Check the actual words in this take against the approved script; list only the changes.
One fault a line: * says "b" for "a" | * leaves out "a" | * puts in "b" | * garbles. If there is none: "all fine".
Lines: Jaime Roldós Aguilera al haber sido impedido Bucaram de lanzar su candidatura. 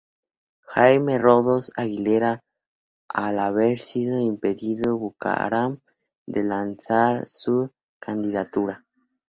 all fine